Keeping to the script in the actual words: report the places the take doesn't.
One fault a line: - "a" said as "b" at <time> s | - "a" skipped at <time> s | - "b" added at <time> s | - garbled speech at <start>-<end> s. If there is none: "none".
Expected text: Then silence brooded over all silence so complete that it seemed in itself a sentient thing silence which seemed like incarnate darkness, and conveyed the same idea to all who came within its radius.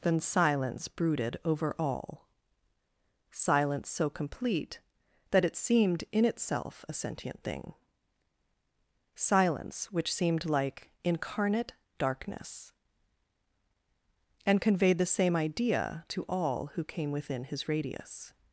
- "its" said as "his" at 17.4 s